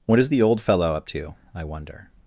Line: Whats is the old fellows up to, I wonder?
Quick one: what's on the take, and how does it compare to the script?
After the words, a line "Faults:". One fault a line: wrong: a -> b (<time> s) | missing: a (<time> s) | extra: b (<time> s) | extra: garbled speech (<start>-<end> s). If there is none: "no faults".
What is the old fellow up to, I wonder?
Faults:
wrong: Whats -> What (0.1 s)
wrong: fellows -> fellow (0.6 s)